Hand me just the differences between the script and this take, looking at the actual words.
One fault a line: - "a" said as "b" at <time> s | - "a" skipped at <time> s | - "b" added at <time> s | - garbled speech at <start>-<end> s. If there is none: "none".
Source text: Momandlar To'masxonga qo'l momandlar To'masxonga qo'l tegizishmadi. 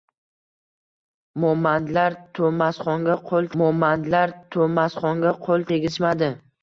none